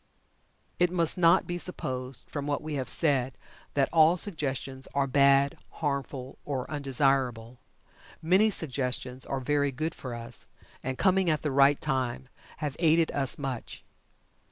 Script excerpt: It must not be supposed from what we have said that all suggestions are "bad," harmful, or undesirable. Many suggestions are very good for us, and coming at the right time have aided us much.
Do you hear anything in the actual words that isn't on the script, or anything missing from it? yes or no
no